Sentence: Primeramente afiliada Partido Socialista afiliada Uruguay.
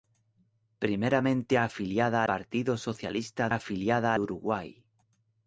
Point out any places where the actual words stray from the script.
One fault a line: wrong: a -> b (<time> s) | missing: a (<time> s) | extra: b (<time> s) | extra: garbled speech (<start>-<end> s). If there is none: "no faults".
no faults